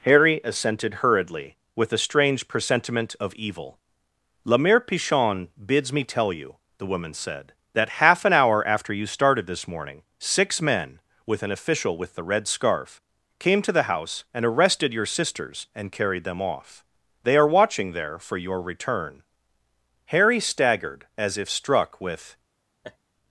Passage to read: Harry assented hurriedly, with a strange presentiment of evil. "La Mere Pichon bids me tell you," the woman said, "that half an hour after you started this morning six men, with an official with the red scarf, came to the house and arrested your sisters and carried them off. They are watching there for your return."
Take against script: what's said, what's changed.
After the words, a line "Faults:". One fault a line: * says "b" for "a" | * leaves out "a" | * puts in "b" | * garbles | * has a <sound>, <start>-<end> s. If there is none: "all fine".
Harry assented hurriedly, with a strange presentiment of evil. "La Mere Pichon bids me tell you," the woman said, "that half an hour after you started this morning six men, with an official with the red scarf, came to the house and arrested your sisters and carried them off. They are watching there for your return." Harry staggered as if struck with
Faults:
* puts in "Harry staggered as if struck with"
* has a laugh, 22.8-23.0 s